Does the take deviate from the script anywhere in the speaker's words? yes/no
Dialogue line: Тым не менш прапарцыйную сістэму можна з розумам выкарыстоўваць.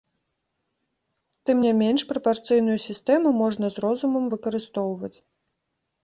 no